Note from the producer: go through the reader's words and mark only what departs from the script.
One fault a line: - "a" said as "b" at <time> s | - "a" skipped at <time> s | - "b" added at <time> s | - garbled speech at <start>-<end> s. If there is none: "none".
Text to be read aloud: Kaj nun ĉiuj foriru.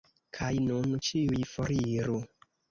none